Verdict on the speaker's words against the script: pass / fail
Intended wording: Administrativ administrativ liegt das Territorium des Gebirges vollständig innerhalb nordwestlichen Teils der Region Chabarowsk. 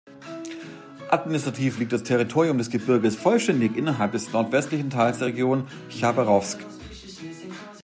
fail